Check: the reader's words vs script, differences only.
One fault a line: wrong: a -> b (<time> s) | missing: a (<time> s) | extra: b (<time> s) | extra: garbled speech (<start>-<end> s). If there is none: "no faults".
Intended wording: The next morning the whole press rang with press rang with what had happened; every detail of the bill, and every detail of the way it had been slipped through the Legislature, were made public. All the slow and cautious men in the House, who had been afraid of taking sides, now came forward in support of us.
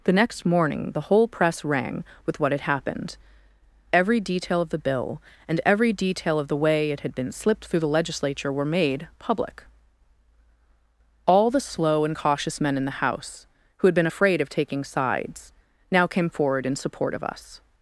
missing: press rang with (2.4 s)